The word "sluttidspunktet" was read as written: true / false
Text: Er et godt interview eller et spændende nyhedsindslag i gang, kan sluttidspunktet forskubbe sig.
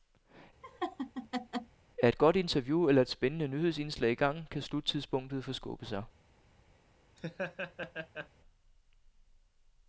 true